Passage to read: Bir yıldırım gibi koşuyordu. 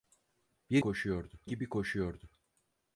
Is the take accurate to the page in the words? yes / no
no